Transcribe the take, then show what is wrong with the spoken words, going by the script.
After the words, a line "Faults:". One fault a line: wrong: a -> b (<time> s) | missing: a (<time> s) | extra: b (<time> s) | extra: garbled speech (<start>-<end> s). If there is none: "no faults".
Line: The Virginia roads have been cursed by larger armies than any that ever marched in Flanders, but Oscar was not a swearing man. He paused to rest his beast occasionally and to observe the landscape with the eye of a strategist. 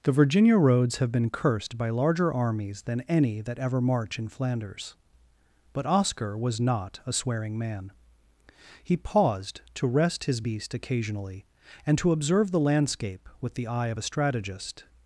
The Virginia roads have been cursed by larger armies than any that ever march in Flanders, but Oscar was not a swearing man. He paused to rest his beast occasionally and to observe the landscape with the eye of a strategist.
Faults:
wrong: marched -> march (3.8 s)